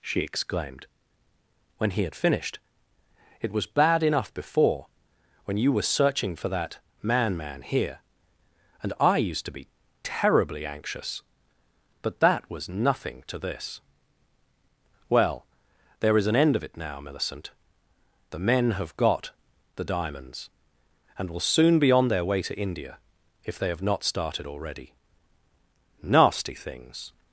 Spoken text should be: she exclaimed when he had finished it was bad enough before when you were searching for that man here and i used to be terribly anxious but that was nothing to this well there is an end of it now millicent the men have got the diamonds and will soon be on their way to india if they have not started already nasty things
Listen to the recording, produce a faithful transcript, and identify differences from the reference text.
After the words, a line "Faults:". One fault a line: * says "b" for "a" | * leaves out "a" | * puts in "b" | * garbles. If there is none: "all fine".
she exclaimed when he had finished it was bad enough before when you were searching for that man man here and i used to be terribly anxious but that was nothing to this well there is an end of it now millicent the men have got the diamonds and will soon be on their way to india if they have not started already nasty things
Faults:
* puts in "man"